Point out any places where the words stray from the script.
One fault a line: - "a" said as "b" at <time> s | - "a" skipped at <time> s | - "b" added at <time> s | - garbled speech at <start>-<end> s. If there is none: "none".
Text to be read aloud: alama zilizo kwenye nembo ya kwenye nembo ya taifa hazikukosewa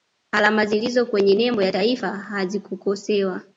- "kwenye nembo ya" skipped at 1.7 s